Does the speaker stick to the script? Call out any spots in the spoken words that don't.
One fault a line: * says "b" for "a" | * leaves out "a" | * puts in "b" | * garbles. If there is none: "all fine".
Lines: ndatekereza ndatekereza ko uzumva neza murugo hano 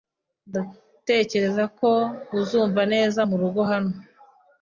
* leaves out "ndatekereza"